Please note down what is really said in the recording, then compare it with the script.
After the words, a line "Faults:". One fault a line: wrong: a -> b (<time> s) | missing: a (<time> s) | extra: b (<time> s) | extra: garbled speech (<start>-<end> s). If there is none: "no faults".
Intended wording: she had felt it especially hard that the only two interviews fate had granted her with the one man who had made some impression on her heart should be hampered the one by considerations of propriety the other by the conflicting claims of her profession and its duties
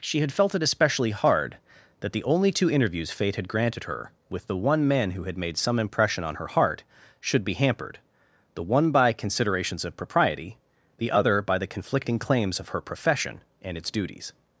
she had felt it especially hard that the only two interviews fate had granted her with the one man who had made some impression on her heart should be hampered the one by considerations of propriety the other by the conflicting claims of her profession and its duties
Faults:
no faults